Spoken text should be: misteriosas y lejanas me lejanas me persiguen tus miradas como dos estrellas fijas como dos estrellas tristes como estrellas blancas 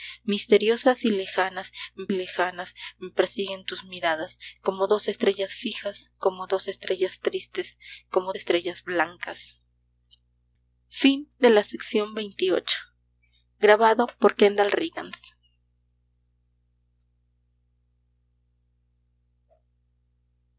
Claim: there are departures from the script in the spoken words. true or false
false